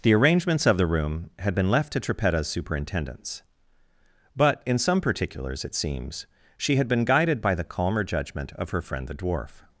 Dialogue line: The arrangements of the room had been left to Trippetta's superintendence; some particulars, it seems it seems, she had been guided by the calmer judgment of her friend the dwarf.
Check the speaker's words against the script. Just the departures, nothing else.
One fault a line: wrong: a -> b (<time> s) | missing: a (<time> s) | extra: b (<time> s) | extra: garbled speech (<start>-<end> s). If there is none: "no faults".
extra: but in (4.3 s)
missing: it seems (6.2 s)